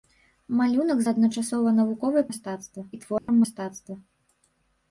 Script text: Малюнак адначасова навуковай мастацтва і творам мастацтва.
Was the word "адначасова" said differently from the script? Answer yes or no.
no